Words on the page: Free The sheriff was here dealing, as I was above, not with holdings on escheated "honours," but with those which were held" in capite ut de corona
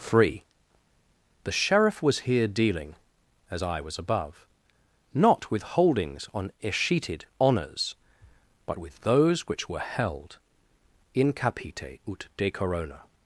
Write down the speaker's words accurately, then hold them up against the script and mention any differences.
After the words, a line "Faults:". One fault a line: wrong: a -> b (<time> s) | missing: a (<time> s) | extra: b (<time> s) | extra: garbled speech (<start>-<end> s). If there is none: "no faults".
Free The sheriff was here dealing, as I was above, not with holdings on escheated "honours," but with those which were held" in capite ut de corona
Faults:
no faults